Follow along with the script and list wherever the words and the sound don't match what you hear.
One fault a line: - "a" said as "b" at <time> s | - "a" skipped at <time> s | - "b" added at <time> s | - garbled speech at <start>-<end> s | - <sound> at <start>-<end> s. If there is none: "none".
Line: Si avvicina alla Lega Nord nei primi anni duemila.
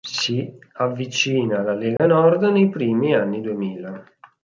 - dropout at 2.0-2.0 s